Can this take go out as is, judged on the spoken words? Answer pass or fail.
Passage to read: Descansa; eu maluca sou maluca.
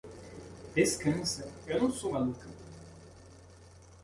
fail